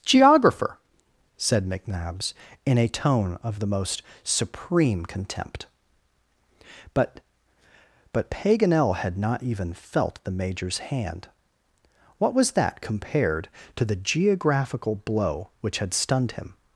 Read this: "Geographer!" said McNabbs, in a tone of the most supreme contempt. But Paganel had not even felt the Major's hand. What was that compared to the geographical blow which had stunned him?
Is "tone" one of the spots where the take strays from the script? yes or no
no